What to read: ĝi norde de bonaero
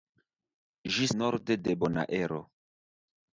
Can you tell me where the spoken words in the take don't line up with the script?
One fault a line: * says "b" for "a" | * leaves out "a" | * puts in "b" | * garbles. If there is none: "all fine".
all fine